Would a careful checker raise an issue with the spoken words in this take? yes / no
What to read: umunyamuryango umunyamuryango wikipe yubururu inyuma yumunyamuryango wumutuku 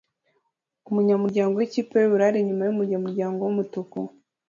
yes